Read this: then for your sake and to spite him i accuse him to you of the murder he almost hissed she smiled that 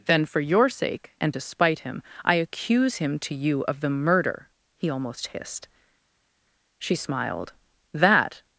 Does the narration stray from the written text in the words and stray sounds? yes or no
no